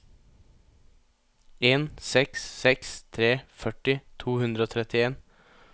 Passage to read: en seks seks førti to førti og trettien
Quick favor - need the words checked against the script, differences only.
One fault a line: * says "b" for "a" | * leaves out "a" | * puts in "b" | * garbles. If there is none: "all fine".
* puts in "tre"
* says "hundre" for "førti"